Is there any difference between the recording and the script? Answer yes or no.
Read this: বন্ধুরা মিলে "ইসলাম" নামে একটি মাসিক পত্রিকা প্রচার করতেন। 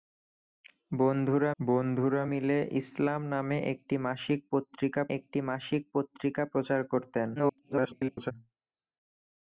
yes